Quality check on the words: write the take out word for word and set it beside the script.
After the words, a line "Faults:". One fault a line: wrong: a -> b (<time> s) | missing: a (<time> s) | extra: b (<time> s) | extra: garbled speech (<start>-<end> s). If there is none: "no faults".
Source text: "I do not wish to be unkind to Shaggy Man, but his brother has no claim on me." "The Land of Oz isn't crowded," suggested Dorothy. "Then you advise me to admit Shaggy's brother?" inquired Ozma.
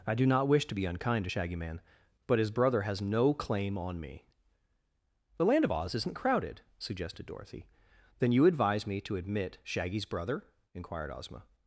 "I do not wish to be unkind to Shaggy Man, but his brother has no claim on me." "The Land of Oz isn't crowded," suggested Dorothy. "Then you advise me to admit Shaggy's brother?" inquired Ozma.
Faults:
no faults